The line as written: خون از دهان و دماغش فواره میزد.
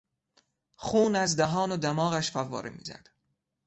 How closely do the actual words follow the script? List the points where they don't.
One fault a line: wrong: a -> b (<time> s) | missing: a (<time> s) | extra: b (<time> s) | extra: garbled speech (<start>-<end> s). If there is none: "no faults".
no faults